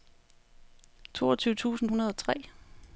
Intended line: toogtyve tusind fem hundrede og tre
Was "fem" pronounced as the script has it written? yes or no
no